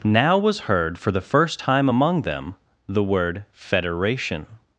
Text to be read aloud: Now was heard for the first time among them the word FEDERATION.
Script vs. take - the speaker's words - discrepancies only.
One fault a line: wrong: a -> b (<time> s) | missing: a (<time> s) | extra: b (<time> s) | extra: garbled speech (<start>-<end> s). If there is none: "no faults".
no faults